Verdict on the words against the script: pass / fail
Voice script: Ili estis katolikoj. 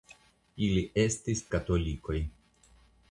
pass